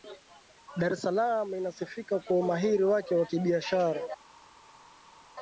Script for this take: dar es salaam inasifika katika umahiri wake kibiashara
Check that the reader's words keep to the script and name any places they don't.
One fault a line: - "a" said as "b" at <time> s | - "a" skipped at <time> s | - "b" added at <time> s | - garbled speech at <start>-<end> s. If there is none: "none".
- "katika" said as "kwa" at 2.2 s
- "wa" added at 3.1 s